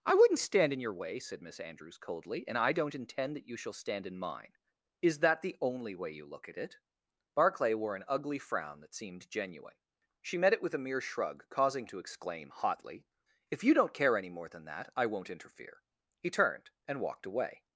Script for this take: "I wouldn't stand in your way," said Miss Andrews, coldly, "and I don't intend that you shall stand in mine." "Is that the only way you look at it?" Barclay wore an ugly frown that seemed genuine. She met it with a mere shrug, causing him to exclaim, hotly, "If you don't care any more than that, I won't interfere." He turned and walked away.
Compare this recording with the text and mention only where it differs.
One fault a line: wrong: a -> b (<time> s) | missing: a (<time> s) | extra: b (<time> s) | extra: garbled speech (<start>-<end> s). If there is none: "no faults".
missing: him (11.9 s)